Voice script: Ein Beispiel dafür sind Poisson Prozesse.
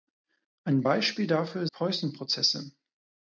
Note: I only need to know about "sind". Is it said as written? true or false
false